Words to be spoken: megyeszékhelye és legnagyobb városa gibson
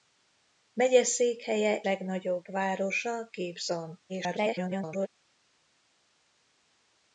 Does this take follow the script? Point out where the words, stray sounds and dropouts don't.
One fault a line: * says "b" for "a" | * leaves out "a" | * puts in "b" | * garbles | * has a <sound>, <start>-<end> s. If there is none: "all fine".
* leaves out "és"
* garbles